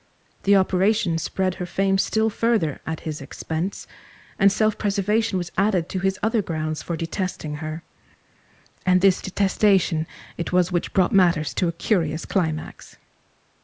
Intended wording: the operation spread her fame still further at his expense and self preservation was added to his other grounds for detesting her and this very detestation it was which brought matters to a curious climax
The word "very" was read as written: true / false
false